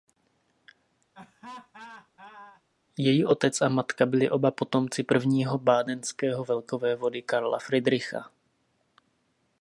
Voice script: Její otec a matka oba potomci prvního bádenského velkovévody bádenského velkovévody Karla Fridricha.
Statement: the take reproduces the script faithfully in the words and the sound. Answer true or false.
false